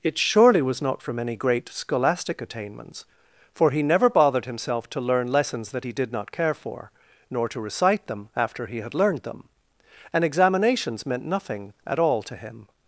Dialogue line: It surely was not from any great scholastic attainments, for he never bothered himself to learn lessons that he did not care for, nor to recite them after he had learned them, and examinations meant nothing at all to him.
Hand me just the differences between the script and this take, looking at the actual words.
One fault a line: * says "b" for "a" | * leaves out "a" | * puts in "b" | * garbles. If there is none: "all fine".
all fine